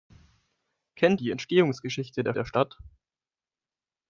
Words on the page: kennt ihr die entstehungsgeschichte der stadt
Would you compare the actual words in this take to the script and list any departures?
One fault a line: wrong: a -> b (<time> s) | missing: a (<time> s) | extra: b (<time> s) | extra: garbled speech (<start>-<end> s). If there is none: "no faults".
missing: ihr (1.2 s)
extra: der (2.3 s)